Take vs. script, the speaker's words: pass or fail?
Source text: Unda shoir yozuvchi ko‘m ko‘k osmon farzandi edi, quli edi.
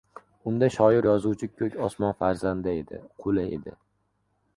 fail